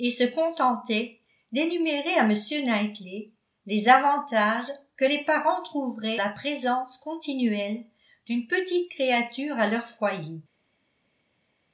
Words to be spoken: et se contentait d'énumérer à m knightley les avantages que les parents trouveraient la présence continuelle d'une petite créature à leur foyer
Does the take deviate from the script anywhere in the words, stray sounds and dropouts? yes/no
no